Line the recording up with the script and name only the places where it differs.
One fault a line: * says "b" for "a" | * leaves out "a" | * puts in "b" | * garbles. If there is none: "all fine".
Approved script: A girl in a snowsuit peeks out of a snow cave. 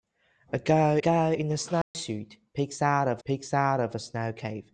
* puts in "girl"
* puts in "peeks out of"